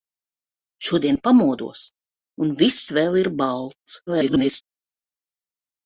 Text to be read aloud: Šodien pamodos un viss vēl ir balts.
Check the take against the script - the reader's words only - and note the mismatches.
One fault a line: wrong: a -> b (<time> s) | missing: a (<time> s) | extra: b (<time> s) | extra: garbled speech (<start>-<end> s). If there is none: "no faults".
extra: garbled speech (4.1-4.6 s)